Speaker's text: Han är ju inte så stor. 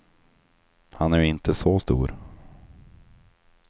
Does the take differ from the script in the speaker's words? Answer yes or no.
no